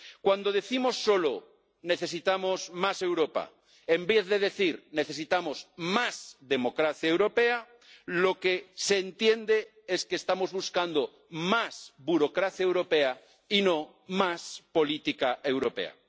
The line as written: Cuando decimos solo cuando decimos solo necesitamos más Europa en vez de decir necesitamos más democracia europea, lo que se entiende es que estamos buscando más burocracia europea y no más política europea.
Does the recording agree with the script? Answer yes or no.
no